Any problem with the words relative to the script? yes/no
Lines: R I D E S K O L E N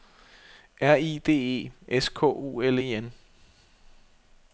no